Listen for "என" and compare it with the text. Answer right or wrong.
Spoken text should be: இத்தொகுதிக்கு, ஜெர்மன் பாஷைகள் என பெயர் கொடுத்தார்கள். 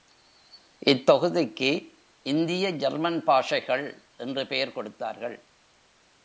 wrong